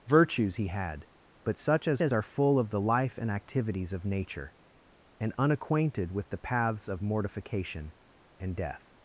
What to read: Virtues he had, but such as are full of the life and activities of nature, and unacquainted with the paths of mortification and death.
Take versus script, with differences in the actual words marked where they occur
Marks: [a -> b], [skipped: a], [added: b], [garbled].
Virtues he had, but such as [added: as] are full of the life and activities of nature, and unacquainted with the paths of mortification and death.